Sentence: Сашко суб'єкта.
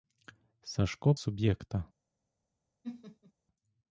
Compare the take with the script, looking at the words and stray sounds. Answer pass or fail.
fail